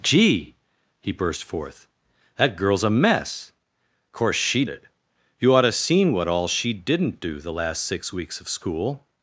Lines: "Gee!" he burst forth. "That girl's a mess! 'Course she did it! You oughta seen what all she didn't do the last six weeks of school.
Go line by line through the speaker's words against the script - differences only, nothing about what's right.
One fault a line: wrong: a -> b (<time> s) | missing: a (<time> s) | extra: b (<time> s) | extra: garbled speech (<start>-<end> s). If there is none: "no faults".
missing: did (4.7 s)